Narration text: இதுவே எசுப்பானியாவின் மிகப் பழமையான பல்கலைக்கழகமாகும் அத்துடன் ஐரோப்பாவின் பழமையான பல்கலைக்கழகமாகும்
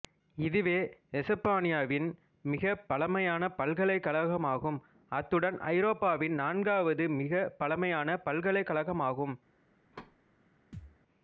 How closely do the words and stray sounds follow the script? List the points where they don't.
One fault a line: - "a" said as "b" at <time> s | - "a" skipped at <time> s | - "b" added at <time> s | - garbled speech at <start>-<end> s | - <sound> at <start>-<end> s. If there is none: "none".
- "நான்காவது மிகப்" added at 6.3 s
- thud at 9.9-10.2 s
- thud at 10.7-11.0 s